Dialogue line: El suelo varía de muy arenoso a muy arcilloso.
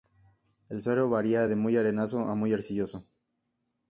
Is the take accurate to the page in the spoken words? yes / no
yes